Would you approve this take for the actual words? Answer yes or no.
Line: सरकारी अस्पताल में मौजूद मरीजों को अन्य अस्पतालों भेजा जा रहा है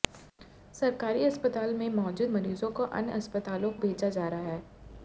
yes